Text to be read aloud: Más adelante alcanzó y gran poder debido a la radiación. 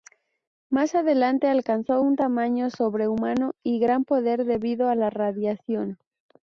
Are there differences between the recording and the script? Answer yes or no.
yes